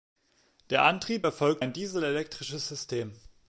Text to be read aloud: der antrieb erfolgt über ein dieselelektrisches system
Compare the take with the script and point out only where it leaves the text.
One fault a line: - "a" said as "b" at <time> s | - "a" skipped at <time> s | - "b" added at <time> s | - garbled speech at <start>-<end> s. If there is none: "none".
- "über" skipped at 1.6 s